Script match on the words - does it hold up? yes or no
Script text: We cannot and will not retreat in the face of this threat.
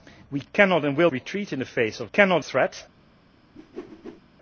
no